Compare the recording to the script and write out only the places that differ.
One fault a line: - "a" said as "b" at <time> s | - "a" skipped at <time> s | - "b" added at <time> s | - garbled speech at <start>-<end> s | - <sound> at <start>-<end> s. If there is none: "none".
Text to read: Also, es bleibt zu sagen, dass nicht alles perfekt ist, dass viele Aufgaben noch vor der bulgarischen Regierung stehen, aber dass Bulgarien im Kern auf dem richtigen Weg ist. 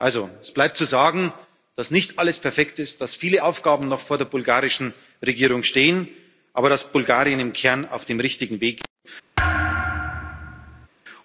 - thud at 9.4-10.9 s